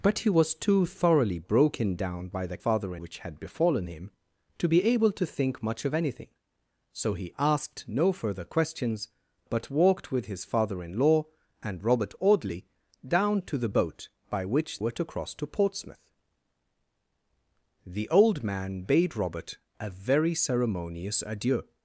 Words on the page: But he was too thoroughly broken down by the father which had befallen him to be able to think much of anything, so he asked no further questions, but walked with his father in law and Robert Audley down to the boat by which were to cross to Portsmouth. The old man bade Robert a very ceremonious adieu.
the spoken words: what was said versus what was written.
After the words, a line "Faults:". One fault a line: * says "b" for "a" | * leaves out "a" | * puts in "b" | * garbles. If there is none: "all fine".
But he was too thoroughly broken down by the father which had befallen him to be able to think much of anything, so he asked no further questions, but walked with his father in law and Robert Audley down to the boat by which were to cross to Portsmouth. The old man bade Robert a very ceremonious adieu.
Faults:
all fine